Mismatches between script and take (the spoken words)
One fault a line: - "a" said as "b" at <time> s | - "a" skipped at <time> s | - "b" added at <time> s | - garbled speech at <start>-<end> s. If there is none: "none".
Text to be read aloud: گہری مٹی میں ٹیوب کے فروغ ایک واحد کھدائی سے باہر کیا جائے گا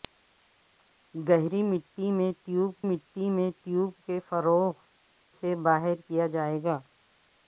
- "کے فروغ ایک واحد کھدائی" said as "مٹی میں ٹیوب کے فروغ" at 2.8 s